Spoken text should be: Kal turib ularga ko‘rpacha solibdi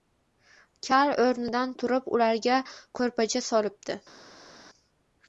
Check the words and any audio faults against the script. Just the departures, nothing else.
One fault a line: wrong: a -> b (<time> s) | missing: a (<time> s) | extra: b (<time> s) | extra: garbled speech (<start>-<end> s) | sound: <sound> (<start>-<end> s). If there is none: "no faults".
extra: o‘rnidan (1.2 s)